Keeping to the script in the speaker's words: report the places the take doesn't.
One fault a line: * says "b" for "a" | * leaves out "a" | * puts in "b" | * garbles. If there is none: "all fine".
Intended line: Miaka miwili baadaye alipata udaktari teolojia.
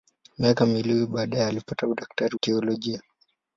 all fine